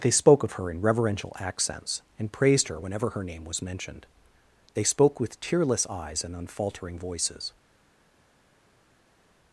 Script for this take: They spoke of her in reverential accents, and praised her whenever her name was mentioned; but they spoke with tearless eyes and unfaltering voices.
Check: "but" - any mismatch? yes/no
yes